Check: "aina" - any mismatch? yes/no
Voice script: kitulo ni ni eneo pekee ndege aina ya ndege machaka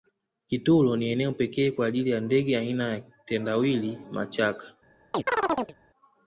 no